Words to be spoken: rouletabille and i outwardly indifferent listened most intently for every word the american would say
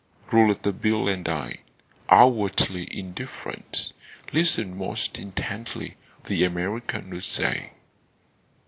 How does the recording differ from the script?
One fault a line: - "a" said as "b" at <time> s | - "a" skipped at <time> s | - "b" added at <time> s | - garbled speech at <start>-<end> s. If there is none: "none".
- "for every word" skipped at 6.0 s